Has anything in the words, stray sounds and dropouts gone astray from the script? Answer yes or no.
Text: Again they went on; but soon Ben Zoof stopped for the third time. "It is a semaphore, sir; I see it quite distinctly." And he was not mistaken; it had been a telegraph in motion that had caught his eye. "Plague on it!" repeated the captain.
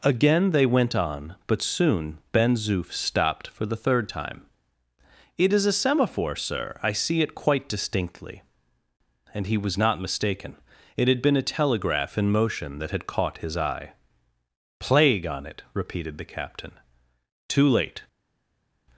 yes